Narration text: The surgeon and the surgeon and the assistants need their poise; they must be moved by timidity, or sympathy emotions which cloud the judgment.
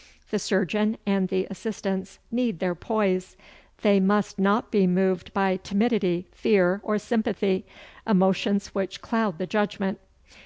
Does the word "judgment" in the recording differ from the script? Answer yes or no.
no